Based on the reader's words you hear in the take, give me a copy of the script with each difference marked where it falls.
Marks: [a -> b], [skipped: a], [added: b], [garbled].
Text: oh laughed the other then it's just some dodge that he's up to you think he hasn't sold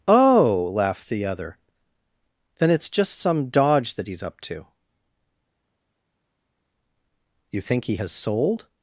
oh laughed the other then it's just some dodge that he's up to you think he [hasn't -> has] sold